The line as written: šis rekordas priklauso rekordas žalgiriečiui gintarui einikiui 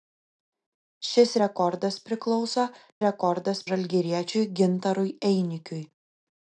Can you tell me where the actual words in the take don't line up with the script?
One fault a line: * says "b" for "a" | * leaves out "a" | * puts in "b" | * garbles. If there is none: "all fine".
all fine